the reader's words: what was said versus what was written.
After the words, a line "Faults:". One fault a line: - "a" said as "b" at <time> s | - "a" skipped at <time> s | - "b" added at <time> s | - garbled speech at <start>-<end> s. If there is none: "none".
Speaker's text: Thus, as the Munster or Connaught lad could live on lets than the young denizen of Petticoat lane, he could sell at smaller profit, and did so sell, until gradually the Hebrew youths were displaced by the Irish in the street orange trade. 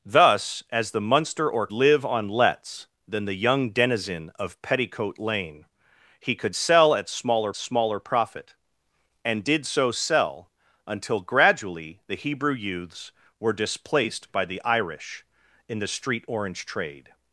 Thus, as the Munster or Live on lets than the young denizen of Petticoat lane, he could sell at smaller smaller profit, and did so sell, until gradually the Hebrew youths were displaced by the Irish in the street orange trade.
Faults:
- "Connaught lad could" skipped at 1.7 s
- "smaller" added at 7.6 s